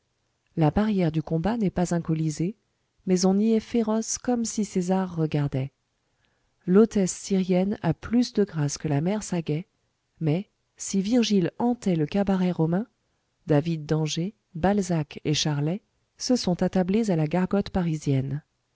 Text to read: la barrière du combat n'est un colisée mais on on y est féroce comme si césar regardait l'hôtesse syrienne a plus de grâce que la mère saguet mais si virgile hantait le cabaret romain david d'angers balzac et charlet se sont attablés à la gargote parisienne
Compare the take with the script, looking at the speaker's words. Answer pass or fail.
fail